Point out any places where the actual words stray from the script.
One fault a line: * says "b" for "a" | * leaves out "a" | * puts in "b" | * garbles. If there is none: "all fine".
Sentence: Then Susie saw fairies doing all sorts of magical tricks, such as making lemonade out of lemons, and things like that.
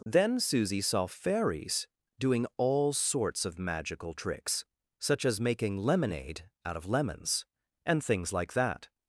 all fine